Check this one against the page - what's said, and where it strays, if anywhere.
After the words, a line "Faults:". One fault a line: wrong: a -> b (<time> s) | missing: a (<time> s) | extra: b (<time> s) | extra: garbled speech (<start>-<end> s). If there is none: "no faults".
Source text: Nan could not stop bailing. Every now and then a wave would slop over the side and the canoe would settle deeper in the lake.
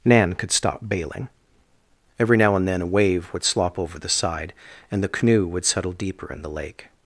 Nan could stop bailing. Every now and then a wave would slop over the side and the canoe would settle deeper in the lake.
Faults:
missing: not (0.5 s)